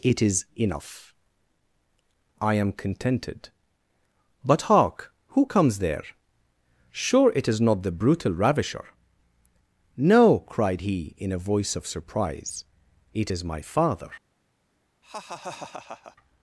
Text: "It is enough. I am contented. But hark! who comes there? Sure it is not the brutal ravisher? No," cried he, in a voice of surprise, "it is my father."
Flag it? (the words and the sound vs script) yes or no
yes